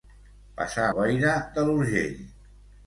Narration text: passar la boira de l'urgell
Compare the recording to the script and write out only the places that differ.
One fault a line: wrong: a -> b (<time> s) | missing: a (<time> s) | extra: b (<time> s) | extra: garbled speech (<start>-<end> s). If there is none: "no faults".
missing: la (0.9 s)